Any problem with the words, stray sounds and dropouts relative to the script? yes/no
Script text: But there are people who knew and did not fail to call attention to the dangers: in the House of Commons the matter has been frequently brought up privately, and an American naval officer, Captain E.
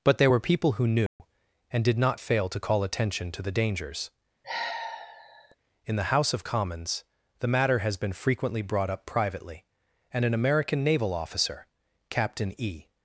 yes